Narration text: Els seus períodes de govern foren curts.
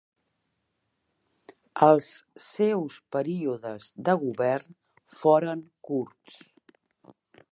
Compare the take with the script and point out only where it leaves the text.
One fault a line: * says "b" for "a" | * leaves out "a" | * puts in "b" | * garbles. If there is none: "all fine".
all fine